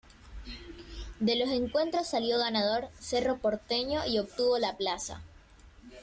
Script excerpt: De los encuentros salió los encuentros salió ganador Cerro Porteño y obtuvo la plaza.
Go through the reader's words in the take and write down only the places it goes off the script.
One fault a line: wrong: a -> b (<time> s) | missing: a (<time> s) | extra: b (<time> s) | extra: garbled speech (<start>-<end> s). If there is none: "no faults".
missing: los encuentros salió (2.4 s)